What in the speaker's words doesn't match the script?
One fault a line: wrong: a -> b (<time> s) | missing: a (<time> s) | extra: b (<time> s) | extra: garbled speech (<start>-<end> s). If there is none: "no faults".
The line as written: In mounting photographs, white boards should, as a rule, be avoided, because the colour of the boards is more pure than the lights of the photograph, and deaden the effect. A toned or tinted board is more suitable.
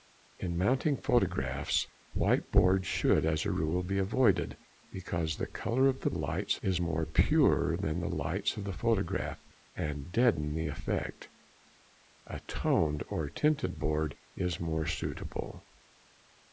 wrong: boards -> lights (6.1 s)